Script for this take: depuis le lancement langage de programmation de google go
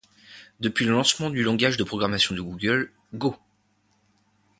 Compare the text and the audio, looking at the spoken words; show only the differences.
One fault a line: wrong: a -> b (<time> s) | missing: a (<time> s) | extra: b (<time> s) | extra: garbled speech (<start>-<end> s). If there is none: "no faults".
extra: du (1.3 s)